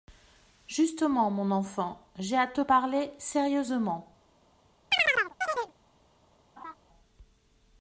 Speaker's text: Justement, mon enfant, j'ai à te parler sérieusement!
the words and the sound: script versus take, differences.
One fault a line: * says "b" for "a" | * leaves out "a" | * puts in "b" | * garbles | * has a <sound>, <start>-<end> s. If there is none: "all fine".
* has a chirp, 4.9-5.7 s
* has a laugh, 6.6-6.7 s